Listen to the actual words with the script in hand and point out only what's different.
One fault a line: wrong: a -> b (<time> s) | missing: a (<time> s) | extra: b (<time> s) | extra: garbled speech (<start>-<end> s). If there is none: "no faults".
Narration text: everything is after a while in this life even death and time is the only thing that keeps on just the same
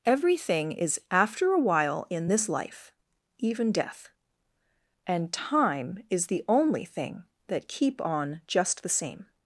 wrong: keeps -> keep (7.7 s)